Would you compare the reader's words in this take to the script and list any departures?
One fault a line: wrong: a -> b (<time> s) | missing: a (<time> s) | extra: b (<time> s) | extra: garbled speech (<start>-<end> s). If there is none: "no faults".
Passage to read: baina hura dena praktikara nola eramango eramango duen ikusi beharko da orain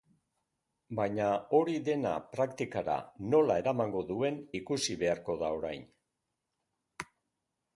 wrong: hura -> hori (1.6 s)
missing: eramango (4.0 s)